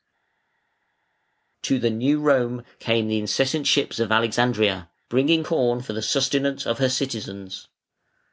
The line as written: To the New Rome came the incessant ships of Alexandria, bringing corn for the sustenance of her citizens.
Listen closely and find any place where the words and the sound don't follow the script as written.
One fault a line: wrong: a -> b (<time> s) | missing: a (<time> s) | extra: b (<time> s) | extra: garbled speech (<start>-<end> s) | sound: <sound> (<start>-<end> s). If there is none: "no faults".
no faults